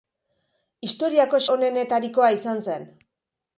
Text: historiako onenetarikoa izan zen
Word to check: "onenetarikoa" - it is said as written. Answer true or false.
true